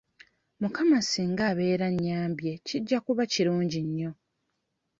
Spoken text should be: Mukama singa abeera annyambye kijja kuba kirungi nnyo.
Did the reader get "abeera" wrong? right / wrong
right